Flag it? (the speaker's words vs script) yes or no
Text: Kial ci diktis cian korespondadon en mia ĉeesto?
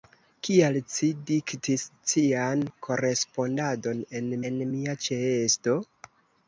yes